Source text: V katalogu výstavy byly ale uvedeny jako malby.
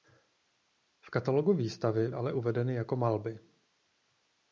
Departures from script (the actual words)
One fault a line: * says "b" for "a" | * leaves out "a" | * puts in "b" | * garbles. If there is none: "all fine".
* leaves out "byly"